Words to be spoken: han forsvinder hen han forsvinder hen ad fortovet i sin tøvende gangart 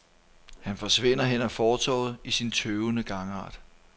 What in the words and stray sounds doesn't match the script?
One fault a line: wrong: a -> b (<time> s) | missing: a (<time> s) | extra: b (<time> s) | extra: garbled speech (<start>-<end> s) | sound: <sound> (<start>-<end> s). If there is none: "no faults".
missing: han forsvinder hen (1.4 s)